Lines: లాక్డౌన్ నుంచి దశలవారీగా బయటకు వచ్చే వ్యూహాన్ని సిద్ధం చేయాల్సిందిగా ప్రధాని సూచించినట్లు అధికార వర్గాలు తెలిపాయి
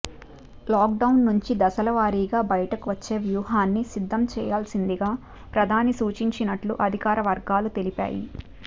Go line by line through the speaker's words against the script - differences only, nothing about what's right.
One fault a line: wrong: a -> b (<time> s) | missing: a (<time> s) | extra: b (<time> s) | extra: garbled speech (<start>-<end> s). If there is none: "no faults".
no faults